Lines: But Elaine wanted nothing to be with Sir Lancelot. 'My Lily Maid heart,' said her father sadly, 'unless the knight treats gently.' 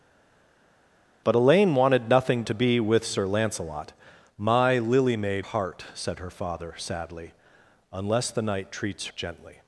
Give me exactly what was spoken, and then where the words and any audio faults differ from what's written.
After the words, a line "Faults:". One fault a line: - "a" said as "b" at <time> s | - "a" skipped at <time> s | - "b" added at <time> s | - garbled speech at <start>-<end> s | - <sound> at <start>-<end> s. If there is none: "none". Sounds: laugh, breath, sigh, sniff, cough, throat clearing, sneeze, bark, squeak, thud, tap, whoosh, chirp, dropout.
But Elaine wanted nothing to be with Sir Lancelot. 'My Lily Maid heart,' said her father sadly, 'unless the knight treats gently.'
Faults:
none